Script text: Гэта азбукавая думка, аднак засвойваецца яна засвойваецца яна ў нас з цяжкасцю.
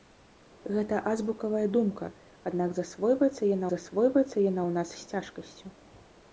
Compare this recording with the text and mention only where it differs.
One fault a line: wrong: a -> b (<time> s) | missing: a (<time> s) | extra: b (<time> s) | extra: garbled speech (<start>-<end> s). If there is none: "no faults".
no faults